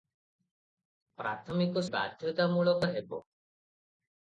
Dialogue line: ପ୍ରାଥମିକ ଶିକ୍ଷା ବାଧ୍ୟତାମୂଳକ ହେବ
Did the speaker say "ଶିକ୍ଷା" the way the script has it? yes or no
no